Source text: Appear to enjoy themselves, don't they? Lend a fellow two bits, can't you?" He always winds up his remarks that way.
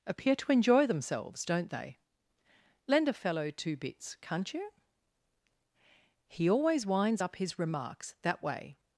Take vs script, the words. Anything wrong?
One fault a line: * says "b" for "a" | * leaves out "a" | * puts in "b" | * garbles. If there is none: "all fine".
all fine